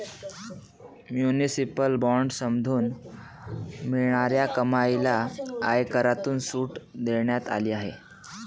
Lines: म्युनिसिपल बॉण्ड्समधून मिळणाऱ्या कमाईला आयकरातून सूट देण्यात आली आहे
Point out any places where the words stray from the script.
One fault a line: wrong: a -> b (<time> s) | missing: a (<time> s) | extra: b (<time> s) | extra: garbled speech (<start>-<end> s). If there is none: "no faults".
no faults